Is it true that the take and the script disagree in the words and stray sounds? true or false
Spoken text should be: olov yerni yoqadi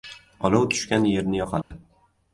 true